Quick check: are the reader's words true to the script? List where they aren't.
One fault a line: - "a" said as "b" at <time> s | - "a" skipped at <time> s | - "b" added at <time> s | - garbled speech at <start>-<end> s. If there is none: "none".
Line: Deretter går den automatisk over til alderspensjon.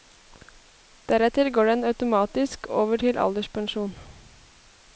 none